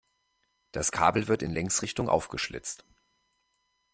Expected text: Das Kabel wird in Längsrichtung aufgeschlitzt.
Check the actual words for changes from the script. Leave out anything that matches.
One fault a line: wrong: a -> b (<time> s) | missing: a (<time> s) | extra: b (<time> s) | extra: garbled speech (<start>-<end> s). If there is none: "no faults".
no faults